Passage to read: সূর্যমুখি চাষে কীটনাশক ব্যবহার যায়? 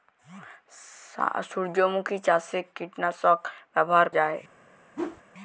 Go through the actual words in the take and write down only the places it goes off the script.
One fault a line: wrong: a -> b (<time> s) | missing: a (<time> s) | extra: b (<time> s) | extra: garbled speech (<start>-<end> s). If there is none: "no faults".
no faults